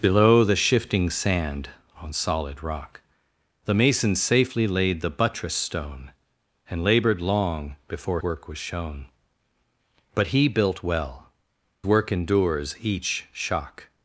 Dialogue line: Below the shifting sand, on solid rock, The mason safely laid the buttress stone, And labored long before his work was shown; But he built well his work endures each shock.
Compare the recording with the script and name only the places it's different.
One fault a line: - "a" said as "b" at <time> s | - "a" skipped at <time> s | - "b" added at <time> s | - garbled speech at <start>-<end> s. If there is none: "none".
- "his" skipped at 8.2 s
- "his" skipped at 11.3 s